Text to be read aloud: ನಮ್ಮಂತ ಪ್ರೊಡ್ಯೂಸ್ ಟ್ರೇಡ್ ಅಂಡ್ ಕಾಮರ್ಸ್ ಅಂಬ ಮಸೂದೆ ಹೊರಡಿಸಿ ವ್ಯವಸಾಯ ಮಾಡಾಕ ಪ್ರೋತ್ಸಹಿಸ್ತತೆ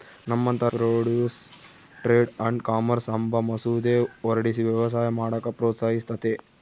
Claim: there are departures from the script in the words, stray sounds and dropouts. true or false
false